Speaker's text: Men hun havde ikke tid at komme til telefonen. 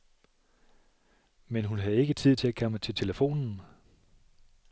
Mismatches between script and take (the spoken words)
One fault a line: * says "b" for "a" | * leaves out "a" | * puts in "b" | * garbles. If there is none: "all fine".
* puts in "til"